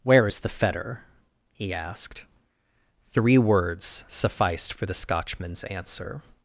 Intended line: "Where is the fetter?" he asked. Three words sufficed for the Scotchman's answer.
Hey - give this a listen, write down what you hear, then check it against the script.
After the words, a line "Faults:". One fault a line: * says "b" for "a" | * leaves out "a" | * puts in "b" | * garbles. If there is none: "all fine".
"Where is the fetter?" he asked. Three words sufficed for the Scotchman's answer.
Faults:
all fine